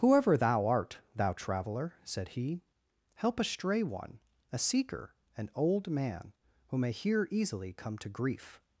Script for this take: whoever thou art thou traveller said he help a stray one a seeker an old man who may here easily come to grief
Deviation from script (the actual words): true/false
false